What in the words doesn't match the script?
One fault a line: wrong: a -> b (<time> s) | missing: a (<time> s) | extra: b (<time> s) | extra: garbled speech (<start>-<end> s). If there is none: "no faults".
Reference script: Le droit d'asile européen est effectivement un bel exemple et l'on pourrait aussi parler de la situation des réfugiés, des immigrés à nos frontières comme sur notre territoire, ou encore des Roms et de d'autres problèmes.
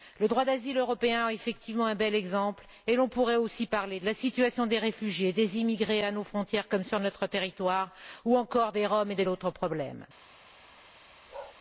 no faults